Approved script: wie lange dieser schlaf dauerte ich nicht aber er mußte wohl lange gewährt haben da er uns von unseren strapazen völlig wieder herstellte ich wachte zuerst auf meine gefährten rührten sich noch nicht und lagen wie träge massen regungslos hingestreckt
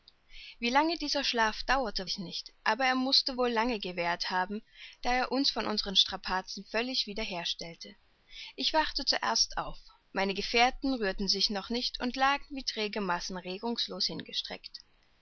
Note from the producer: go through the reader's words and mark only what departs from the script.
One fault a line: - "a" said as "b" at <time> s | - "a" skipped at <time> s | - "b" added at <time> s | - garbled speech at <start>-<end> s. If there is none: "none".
none